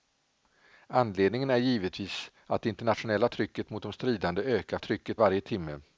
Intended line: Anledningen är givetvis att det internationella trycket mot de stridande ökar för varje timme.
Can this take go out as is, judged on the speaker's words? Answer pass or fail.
fail